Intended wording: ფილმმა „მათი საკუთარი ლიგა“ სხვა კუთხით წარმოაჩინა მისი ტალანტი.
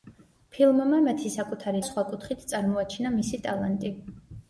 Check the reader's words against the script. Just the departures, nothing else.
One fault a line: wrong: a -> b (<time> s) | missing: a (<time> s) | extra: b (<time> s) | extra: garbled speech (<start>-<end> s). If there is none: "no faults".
missing: ლიგა (1.8 s)